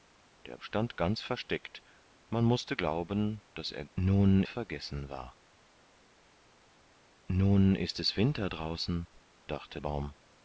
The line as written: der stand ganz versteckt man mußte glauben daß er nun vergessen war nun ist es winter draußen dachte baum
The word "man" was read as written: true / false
true